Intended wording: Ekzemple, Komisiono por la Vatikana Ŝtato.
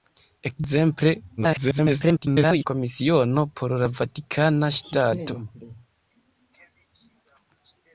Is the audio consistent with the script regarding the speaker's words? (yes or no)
no